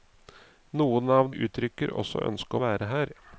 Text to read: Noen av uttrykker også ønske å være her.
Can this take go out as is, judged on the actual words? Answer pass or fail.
pass